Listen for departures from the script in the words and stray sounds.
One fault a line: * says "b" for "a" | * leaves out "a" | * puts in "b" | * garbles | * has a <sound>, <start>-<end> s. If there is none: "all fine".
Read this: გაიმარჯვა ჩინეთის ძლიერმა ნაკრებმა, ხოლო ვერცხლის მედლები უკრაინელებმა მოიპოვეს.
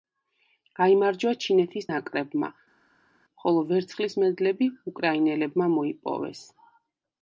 * leaves out "ძლიერმა"